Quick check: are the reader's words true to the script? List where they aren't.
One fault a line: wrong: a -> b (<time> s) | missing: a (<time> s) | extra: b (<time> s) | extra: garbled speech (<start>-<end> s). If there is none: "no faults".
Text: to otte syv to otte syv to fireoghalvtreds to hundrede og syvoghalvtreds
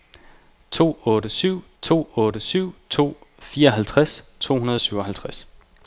no faults